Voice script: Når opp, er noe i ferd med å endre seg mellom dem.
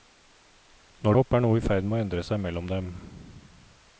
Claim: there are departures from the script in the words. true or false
false